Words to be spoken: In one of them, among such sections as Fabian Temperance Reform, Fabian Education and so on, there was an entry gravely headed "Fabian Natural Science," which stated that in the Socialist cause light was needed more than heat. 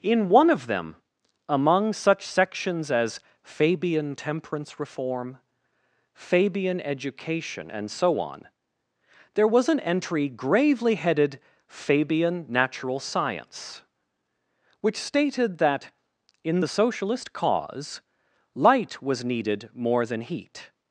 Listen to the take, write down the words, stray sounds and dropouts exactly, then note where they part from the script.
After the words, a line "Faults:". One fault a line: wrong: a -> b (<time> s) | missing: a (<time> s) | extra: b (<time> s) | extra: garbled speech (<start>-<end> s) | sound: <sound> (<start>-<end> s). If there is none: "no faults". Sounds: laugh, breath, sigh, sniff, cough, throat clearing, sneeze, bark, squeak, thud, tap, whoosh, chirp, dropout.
In one of them, among such sections as Fabian Temperance Reform, Fabian Education and so on, there was an entry gravely headed "Fabian Natural Science," which stated that in the Socialist cause light was needed more than heat.
Faults:
no faults